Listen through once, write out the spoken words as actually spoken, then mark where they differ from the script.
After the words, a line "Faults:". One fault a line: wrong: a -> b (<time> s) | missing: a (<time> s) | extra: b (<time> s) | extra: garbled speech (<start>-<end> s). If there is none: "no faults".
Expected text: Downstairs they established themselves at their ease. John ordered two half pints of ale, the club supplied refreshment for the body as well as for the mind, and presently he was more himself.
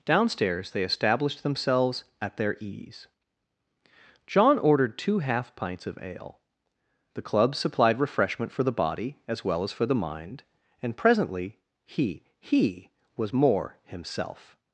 Downstairs they established themselves at their ease. John ordered two half pints of ale, the club supplied refreshment for the body as well as for the mind, and presently he he was more himself.
Faults:
extra: he (12.4 s)